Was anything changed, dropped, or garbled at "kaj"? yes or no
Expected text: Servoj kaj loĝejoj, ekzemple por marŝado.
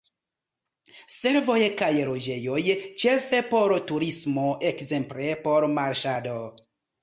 no